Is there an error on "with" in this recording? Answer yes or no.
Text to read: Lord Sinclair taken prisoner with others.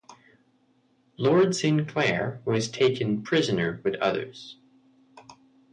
no